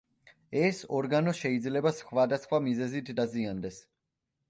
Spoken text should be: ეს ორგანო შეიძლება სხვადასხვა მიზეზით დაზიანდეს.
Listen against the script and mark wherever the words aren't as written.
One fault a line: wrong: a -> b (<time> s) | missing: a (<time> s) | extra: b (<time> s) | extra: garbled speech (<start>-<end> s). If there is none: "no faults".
no faults